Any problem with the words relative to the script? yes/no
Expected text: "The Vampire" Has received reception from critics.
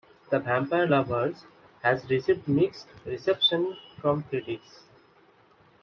yes